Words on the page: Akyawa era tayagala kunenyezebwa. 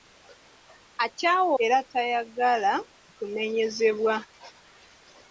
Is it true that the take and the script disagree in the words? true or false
false